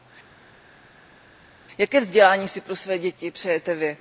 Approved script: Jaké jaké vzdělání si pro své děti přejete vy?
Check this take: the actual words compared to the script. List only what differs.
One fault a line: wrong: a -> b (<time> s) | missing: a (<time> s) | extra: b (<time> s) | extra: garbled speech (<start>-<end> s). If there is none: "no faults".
missing: jaké (2.0 s)